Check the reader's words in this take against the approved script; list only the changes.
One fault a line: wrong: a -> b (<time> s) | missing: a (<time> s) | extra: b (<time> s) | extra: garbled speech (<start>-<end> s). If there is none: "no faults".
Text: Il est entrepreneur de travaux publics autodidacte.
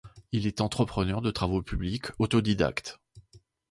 no faults